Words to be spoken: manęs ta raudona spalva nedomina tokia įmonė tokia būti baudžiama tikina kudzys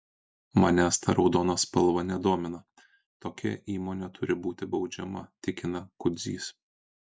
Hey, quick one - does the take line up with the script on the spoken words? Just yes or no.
no